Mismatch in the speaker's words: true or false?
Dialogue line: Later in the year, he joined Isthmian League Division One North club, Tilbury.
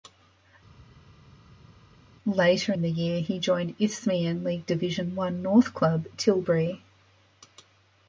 false